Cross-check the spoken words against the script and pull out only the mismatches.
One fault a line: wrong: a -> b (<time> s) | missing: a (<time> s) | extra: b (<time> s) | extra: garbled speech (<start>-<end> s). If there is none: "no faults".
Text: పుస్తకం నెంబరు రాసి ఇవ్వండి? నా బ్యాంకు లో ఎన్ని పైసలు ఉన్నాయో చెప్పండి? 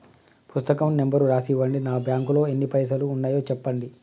no faults